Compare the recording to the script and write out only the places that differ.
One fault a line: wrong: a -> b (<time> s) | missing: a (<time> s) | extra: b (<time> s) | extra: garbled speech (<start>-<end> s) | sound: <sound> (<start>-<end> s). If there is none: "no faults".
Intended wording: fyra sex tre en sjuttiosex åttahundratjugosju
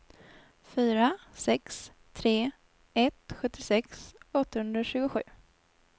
wrong: en -> ett (2.9 s)